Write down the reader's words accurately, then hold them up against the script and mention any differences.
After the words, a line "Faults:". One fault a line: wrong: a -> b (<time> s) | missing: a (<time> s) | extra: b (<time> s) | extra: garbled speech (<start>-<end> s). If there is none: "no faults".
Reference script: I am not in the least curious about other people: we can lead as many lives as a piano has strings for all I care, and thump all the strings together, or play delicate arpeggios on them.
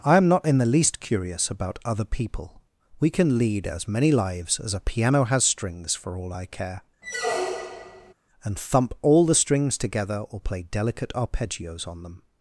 I am not in the least curious about other people: we can lead as many lives as a piano has strings for all I care, and thump all the strings together, or play delicate arpeggios on them.
Faults:
no faults